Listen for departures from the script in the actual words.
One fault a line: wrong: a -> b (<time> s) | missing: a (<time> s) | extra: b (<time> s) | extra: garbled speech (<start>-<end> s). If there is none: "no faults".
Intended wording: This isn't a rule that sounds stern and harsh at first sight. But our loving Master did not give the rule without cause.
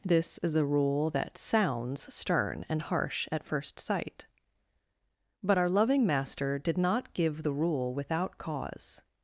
wrong: isn't -> is (0.4 s)